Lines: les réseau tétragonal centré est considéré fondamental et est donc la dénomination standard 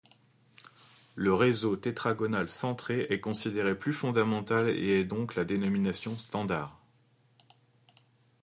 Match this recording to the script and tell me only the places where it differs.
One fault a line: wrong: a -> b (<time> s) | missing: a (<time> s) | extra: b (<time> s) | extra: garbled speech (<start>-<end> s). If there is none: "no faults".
wrong: les -> le (1.1 s)
extra: plus (3.8 s)